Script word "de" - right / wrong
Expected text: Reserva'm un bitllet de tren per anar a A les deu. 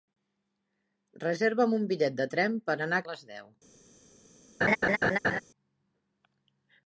right